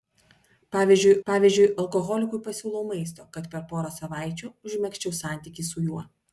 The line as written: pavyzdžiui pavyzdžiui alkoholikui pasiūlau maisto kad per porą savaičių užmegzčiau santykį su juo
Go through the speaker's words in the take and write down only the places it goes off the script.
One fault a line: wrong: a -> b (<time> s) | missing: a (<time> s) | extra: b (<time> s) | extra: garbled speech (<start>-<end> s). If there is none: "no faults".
no faults